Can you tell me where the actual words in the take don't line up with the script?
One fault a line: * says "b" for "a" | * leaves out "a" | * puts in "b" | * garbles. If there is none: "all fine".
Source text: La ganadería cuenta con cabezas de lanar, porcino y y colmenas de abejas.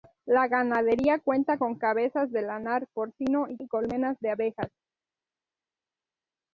all fine